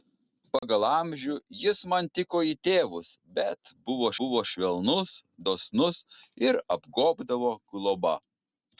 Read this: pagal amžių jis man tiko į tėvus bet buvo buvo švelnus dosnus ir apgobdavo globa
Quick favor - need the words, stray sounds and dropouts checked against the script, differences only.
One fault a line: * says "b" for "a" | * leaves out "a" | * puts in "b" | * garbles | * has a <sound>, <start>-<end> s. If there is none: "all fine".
* has a dropout, 0.6-0.6 s